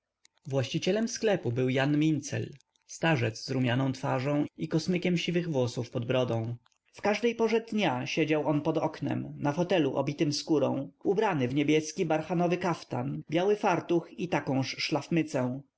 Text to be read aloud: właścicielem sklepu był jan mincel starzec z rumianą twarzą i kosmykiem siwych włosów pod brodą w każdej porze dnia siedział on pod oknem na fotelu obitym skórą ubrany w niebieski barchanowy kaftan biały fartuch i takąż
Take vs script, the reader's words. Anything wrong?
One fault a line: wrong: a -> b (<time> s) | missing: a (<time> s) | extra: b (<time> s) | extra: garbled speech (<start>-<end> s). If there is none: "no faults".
no faults